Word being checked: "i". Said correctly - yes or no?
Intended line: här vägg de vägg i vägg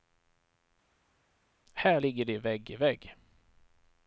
yes